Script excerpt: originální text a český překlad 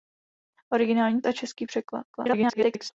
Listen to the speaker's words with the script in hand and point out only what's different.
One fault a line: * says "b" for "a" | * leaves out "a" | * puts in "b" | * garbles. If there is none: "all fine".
* leaves out "text"
* garbles